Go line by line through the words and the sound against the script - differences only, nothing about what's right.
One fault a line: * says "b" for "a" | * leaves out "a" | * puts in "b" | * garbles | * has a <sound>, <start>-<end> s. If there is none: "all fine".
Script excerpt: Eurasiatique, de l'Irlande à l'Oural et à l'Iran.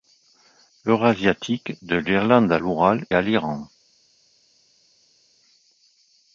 * leaves out "et"